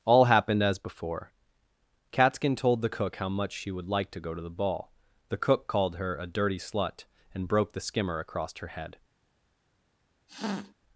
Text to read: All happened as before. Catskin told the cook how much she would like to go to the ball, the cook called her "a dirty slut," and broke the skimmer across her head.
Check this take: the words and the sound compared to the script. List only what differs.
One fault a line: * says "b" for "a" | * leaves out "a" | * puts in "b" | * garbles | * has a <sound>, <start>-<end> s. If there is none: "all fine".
* has a sniff, 10.3-10.7 s